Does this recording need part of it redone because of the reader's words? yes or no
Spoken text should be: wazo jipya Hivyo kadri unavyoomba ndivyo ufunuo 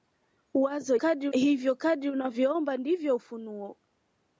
yes